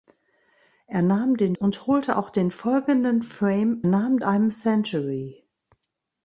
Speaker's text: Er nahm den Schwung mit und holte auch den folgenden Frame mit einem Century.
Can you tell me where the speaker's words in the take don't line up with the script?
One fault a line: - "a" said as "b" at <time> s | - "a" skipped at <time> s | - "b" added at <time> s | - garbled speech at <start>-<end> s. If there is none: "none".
- "Schwung mit" skipped at 1.6 s
- "mit" said as "nahm" at 3.9 s